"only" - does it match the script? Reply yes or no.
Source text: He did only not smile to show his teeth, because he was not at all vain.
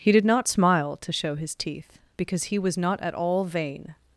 no